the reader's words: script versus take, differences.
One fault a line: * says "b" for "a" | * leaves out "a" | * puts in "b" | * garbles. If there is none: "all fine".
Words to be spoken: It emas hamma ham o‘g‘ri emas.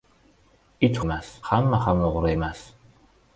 all fine